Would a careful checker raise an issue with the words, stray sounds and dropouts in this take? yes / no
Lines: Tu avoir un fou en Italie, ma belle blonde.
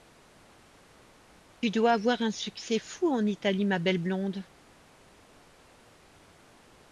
yes